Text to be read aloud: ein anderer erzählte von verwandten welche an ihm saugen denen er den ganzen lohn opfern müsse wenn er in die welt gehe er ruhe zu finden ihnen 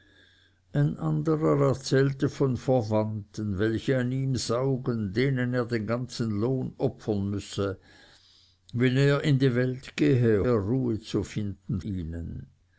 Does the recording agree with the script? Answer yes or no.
yes